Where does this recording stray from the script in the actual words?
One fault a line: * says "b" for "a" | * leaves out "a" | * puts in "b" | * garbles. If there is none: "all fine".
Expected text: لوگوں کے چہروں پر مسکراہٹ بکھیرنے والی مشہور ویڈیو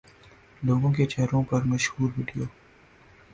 * leaves out "مسکراہٹ بکھیرنے والی"